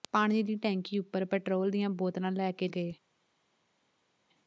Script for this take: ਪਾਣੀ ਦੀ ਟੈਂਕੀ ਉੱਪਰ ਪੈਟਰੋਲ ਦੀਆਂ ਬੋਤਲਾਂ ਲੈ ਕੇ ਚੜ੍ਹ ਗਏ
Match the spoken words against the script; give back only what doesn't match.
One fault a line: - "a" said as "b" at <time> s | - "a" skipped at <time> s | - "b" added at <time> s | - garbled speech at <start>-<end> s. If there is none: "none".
- "ਚੜ੍ਹ" skipped at 2.7 s